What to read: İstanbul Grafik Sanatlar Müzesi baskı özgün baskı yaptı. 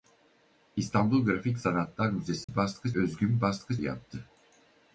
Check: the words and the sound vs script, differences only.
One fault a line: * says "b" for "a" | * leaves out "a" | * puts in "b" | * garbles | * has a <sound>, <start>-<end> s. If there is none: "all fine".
* has a dropout, 2.4-2.5 s